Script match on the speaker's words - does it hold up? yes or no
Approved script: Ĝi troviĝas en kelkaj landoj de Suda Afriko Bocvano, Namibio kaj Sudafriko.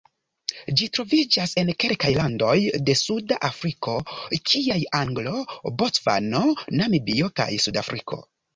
no